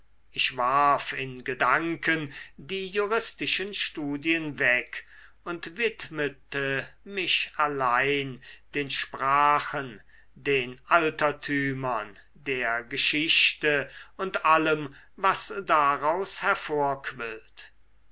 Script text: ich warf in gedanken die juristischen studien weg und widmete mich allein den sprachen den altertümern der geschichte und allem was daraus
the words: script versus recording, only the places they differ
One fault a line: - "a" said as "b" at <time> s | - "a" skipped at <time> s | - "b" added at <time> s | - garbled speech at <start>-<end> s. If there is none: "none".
none